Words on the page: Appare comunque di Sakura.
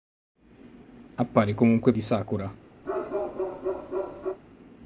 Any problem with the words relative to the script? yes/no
no